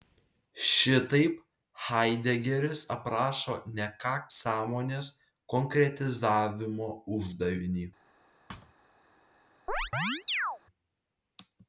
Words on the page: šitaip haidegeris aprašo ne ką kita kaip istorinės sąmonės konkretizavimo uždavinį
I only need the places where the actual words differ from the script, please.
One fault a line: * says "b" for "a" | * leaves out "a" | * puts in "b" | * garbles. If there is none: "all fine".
* leaves out "kita kaip istorinės"